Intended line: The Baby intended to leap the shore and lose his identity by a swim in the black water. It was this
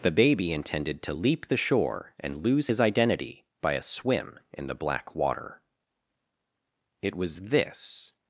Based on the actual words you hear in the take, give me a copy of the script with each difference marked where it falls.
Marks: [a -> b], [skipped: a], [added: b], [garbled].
The Baby intended to leap the shore and lose his identity by a swim in the black water. It was this